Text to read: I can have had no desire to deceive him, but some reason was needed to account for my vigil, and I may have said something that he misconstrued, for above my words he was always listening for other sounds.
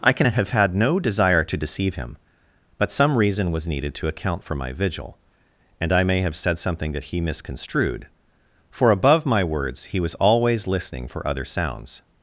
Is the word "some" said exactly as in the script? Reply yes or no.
yes